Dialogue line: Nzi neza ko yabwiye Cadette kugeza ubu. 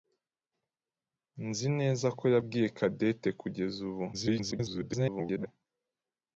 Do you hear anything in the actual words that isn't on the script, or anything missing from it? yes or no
yes